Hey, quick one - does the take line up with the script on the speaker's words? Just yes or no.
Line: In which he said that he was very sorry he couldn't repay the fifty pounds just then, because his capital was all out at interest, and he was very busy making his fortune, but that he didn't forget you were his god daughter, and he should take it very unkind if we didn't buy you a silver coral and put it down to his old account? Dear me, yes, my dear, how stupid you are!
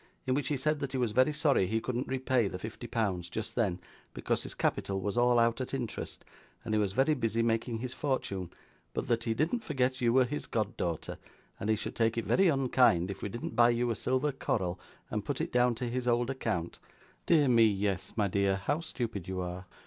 yes